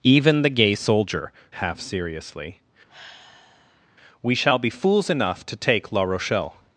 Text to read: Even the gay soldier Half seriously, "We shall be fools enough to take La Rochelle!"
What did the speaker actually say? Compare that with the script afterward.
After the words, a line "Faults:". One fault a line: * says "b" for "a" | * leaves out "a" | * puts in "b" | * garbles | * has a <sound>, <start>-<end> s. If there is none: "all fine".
Even the gay soldier Half seriously, "We shall be fools enough to take La Rochelle!"
Faults:
* has a sigh, 2.9-3.9 s